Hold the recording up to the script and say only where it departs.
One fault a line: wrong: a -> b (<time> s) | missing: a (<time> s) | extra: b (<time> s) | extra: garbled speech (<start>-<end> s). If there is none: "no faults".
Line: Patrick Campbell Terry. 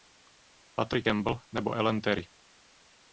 extra: nebo Ellen (1.5 s)